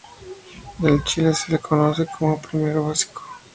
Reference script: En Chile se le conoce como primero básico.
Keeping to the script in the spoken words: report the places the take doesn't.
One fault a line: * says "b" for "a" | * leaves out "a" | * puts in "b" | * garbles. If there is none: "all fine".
all fine